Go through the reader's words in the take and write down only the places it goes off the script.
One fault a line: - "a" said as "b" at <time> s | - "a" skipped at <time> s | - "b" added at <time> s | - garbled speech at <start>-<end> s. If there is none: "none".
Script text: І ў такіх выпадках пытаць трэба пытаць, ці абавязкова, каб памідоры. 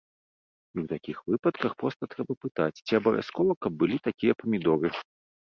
- "пытаць" said as "проста" at 1.8 s
- "былі такія" added at 3.9 s